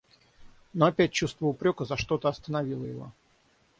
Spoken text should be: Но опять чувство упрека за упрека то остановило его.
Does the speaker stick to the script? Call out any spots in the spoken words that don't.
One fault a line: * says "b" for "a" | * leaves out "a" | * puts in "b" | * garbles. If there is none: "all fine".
* says "что" for "упрека"